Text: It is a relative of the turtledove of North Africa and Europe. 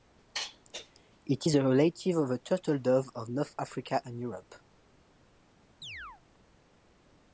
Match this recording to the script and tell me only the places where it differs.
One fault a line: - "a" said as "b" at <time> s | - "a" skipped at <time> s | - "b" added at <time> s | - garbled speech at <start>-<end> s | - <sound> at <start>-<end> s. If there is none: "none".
- chirp at 5.8-6.2 s